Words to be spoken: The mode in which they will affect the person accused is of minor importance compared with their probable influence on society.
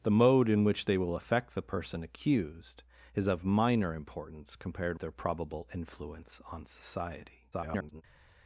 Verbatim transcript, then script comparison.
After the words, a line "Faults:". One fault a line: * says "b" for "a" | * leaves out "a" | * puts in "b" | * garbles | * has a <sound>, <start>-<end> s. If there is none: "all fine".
The mode in which they will affect the person accused is of minor importance compared their probable influence on society. [garbled]
Faults:
* leaves out "with"
* garbles